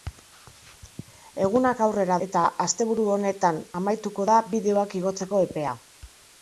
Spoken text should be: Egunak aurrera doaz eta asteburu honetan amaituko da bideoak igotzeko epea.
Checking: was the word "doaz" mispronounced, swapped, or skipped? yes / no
yes